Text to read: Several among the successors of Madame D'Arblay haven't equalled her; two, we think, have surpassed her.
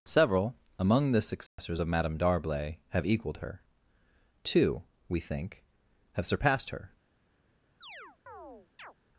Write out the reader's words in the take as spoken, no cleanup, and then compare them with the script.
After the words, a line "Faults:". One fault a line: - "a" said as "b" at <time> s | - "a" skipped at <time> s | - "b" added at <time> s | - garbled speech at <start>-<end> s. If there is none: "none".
Several among the successors of Madame D'Arblay have equalled her; two, we think, have surpassed her.
Faults:
- "haven't" said as "have" at 2.9 s